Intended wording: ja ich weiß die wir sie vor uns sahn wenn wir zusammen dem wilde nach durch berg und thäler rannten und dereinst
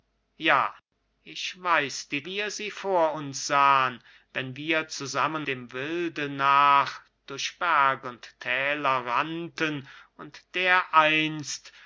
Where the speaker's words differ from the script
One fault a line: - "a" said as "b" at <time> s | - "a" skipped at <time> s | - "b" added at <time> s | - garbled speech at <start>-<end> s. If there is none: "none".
none